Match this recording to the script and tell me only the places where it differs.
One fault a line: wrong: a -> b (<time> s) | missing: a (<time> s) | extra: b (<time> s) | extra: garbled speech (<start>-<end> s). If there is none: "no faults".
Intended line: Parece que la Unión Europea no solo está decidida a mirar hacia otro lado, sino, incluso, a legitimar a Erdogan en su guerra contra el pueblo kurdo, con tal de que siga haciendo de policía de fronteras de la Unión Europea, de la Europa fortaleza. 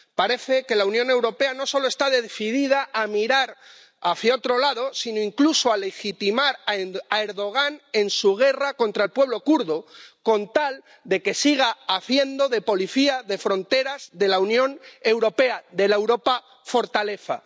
no faults